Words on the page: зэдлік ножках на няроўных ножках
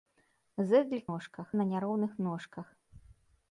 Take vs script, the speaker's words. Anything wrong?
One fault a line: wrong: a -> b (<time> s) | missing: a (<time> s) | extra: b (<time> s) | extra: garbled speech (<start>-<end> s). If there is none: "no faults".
no faults